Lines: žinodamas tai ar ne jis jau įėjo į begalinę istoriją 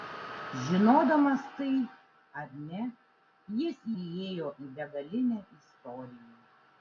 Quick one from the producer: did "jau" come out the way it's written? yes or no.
no